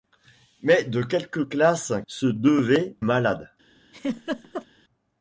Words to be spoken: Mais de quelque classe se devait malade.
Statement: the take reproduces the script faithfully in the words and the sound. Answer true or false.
false